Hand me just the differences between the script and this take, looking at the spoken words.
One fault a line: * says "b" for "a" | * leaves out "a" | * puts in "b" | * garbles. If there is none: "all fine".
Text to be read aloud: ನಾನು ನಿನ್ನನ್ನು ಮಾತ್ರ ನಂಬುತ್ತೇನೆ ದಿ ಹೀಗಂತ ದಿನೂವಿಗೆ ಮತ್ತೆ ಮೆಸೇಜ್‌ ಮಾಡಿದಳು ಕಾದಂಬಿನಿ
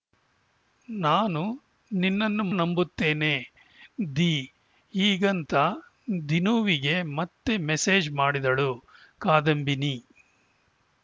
* leaves out "ಮಾತ್ರ"